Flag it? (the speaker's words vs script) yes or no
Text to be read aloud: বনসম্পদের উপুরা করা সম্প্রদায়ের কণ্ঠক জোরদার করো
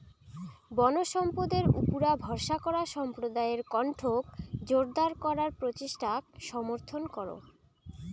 yes